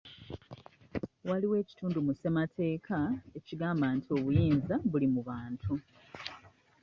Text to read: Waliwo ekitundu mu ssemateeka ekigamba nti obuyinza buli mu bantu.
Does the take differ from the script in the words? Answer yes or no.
no